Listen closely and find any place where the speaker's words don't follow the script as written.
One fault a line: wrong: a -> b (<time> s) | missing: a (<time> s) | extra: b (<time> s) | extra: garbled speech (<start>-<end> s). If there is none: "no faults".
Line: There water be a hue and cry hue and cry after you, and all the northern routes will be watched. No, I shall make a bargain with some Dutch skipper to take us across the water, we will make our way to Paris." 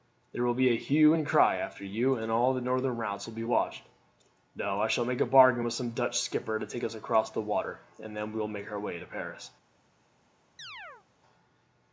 wrong: water -> will (0.4 s)
missing: hue and cry (1.6 s)
extra: and then (8.0 s)